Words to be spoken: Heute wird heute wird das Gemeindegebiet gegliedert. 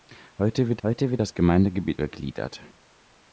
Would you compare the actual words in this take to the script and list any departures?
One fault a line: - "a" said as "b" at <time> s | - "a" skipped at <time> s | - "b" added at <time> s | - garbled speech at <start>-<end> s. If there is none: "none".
none